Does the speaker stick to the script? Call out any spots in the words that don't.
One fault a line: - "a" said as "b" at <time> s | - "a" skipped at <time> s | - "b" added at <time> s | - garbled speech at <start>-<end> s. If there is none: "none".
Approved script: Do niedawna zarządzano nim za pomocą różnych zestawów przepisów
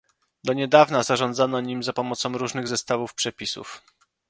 none